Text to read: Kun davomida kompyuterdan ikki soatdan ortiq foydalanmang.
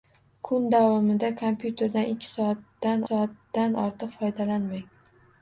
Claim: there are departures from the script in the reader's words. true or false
true